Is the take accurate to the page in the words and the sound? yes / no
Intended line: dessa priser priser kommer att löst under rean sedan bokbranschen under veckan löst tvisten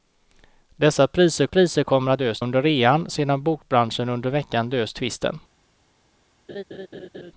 no